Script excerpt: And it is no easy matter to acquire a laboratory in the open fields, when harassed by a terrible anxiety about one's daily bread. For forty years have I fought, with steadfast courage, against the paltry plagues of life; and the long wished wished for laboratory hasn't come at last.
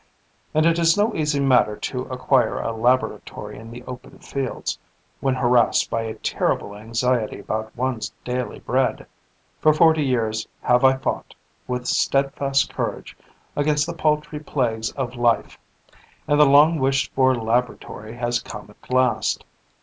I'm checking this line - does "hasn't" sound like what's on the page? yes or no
no